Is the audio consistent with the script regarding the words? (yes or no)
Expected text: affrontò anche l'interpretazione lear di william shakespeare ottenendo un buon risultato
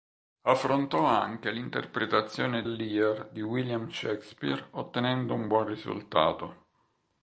yes